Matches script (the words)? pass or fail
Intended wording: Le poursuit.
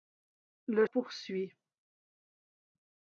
pass